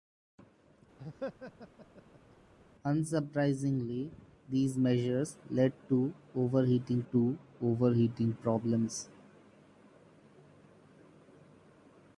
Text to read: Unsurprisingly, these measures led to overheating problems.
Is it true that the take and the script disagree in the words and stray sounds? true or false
true